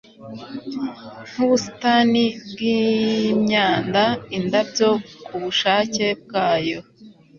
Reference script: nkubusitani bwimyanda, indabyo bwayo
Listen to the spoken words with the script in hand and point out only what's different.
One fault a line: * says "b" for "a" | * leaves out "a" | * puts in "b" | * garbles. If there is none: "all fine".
* puts in "kubushake"